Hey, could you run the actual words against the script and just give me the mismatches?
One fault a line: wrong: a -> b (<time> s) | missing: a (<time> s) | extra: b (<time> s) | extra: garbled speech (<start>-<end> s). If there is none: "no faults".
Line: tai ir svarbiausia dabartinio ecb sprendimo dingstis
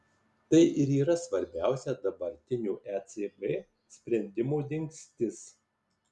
extra: yra (1.0 s)